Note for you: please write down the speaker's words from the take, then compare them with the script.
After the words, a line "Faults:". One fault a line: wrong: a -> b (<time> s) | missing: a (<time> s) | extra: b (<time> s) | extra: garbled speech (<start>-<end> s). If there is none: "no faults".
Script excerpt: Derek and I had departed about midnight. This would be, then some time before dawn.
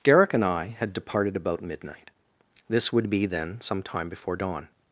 Derek and I had departed about midnight. This would be, then some time before dawn.
Faults:
no faults